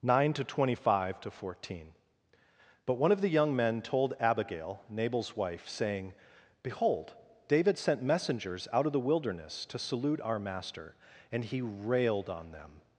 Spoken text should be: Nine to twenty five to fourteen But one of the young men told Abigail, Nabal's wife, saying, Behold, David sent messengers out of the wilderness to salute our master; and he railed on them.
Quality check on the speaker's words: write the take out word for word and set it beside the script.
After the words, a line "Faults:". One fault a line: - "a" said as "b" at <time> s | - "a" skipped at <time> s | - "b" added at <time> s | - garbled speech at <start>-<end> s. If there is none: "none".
Nine to twenty five to fourteen But one of the young men told Abigail, Nabal's wife, saying, Behold, David sent messengers out of the wilderness to salute our master; and he railed on them.
Faults:
none